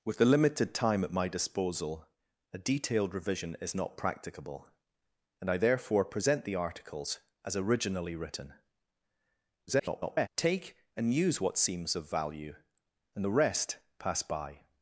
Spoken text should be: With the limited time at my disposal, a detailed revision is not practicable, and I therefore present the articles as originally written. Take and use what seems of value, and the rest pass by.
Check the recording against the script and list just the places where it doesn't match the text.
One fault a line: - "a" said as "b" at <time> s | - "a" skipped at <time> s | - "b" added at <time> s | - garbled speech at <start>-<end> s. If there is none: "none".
- garbled speech at 9.7-10.3 s